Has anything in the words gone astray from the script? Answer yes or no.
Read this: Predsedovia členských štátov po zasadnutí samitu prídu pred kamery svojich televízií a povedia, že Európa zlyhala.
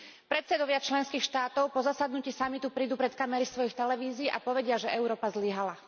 no